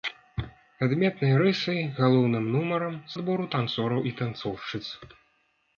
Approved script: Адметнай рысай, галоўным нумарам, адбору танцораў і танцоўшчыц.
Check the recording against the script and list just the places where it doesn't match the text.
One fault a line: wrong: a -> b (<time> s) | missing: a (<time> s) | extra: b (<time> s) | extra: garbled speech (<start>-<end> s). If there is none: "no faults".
no faults